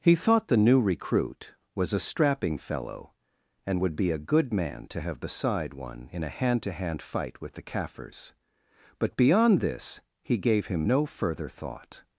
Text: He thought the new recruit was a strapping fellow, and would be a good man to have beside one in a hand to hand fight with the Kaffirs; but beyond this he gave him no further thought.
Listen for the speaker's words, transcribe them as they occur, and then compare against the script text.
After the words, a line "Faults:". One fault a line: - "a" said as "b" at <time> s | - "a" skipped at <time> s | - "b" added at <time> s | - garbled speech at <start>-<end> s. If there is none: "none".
He thought the new recruit was a strapping fellow, and would be a good man to have beside one in a hand to hand fight with the Kaffirs; but beyond this he gave him no further thought.
Faults:
none